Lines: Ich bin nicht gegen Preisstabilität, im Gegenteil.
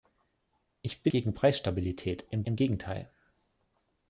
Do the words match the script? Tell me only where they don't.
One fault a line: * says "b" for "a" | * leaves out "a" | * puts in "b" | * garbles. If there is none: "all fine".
* leaves out "nicht"
* puts in "im"